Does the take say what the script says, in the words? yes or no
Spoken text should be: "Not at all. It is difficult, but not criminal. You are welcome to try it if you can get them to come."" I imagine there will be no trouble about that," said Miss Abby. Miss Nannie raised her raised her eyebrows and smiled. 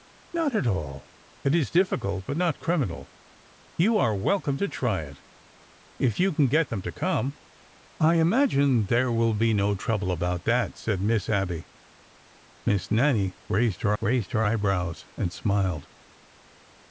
yes